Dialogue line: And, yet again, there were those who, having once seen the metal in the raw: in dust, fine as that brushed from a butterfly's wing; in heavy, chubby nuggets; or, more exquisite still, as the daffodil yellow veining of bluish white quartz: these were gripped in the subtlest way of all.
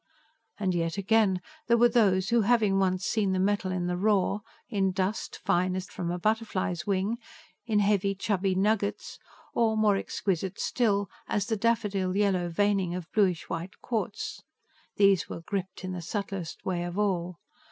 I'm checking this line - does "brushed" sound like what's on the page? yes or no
no